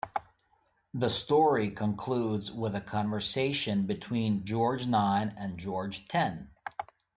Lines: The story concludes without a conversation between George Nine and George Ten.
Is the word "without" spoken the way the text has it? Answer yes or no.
no